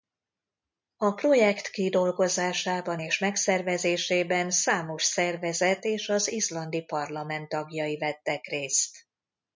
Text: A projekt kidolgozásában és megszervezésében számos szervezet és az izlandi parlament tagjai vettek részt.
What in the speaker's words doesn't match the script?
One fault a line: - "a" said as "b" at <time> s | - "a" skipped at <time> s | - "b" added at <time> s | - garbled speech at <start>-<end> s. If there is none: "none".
none